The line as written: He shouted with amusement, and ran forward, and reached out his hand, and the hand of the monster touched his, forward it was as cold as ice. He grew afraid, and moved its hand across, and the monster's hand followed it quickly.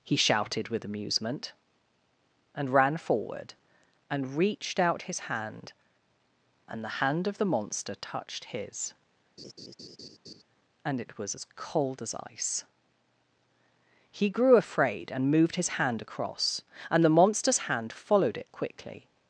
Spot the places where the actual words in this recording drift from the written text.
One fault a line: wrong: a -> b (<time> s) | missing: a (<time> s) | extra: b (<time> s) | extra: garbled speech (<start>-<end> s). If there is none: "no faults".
wrong: forward -> and (10.8 s)
wrong: its -> his (15.6 s)